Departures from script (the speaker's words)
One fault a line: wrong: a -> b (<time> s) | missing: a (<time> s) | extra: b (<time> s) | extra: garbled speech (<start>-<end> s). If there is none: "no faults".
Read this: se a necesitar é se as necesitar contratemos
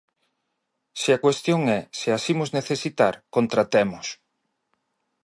wrong: necesitar -> cuestión (1.2 s)
extra: imos (2.3 s)